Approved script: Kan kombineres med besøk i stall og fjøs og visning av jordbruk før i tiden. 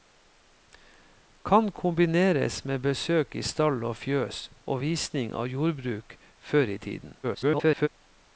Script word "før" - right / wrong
right